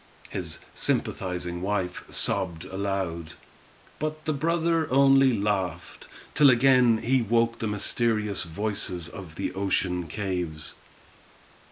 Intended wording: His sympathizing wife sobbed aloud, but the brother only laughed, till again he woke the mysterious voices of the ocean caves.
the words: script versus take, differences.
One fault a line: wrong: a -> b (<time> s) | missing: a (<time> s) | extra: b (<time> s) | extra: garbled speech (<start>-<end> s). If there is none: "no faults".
no faults